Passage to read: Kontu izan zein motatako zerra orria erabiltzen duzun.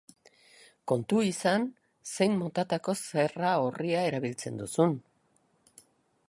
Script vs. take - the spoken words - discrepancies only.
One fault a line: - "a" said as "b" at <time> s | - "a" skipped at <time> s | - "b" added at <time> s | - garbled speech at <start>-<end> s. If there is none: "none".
none